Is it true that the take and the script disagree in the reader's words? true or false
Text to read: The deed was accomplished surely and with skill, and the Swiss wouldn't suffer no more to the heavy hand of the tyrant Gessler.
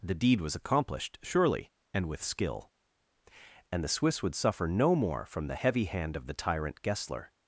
true